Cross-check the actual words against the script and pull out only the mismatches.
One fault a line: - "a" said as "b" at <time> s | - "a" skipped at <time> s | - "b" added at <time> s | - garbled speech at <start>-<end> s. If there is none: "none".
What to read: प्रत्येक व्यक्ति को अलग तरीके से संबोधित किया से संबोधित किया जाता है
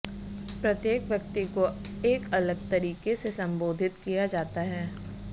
- "एक" added at 2.1 s
- "से संबोधित किया" skipped at 4.2 s